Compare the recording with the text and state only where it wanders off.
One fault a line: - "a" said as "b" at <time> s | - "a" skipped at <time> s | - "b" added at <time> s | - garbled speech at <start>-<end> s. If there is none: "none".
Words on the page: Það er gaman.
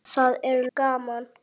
none